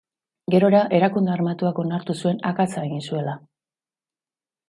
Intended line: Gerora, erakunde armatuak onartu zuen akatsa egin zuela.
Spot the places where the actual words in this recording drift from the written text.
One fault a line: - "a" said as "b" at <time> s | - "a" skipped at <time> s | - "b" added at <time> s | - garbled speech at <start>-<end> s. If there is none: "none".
none